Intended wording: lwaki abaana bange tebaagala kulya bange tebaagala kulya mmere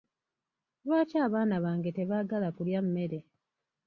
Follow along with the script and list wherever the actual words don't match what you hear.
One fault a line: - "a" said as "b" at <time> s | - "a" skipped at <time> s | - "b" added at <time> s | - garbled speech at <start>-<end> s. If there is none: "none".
- "bange tebaagala kulya" skipped at 2.8 s